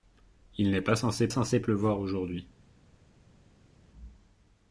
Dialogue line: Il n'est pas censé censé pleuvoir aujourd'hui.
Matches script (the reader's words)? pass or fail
pass